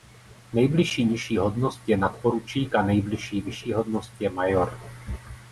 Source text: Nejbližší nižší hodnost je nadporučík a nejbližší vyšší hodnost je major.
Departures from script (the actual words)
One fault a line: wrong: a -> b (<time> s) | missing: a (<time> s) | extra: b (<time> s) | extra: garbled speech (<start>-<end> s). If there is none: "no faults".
no faults